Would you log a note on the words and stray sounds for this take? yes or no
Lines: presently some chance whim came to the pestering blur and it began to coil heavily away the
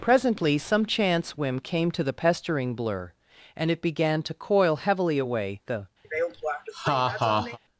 yes